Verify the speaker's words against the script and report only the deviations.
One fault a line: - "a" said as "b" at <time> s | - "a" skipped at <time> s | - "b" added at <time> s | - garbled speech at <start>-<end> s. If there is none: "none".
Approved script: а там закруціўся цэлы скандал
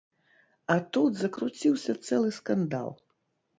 - "там" said as "тут" at 1.0 s